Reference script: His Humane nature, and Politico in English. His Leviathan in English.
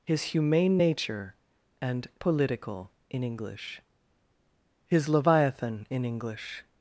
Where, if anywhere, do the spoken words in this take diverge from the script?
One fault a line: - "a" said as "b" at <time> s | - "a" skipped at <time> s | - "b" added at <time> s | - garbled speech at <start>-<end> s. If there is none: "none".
none